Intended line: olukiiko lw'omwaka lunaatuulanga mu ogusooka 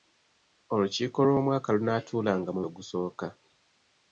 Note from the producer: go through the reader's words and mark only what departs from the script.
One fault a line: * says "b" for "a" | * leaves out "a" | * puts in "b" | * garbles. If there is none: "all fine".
all fine